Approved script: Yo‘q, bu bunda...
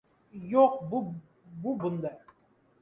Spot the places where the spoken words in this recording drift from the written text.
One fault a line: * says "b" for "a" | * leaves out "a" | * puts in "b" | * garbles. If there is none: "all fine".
all fine